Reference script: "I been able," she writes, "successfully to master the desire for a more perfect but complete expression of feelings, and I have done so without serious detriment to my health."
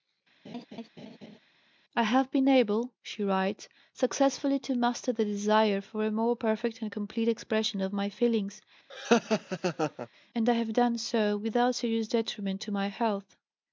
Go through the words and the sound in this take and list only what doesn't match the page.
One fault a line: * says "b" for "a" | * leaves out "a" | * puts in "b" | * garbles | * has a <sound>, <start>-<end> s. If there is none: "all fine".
* has a laugh, 0.4-1.4 s
* puts in "have"
* says "and" for "but"
* puts in "my"
* has a laugh, 8.9-10.1 s